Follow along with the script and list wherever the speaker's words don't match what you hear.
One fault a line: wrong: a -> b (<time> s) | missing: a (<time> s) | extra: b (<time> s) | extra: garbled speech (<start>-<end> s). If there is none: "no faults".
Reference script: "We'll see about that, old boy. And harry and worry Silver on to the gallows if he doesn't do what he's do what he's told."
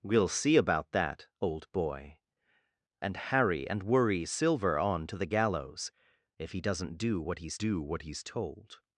no faults